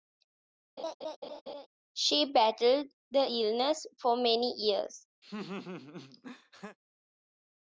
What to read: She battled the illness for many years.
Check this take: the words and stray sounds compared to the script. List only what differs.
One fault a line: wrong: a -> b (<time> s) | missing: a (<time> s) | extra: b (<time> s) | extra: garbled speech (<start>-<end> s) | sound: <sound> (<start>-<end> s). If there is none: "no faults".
sound: laugh (0.8-1.7 s)
sound: laugh (5.2-6.8 s)